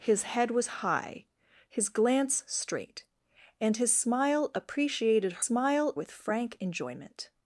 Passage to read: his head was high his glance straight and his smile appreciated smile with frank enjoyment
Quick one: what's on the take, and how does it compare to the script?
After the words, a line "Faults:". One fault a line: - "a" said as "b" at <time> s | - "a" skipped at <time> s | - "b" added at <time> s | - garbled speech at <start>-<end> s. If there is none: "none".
his head was high his glance straight and his smile appreciated smile with frank enjoyment
Faults:
none